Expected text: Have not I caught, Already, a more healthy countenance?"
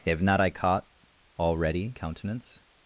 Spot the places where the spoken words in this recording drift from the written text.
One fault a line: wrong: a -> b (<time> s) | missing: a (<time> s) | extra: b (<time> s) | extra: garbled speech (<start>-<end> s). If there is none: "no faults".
missing: a more healthy (1.9 s)